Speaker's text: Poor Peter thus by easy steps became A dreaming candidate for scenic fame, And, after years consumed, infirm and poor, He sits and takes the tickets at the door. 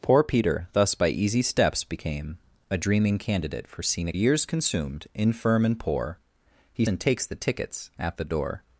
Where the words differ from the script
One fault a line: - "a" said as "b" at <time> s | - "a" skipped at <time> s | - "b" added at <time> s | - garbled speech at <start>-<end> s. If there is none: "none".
- "fame And after" skipped at 4.2 s
- "sits" skipped at 6.8 s